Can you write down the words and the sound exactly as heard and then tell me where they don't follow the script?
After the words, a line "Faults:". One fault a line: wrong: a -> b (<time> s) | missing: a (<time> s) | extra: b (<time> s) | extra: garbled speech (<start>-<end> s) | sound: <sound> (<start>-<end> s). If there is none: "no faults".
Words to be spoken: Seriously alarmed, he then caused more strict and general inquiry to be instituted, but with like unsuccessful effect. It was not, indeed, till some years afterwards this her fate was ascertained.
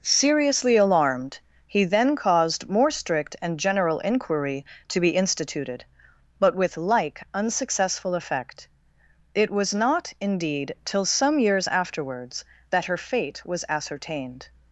Seriously alarmed, he then caused more strict and general inquiry to be instituted, but with like unsuccessful effect. It was not, indeed, till some years afterwards that her fate was ascertained.
Faults:
wrong: this -> that (12.7 s)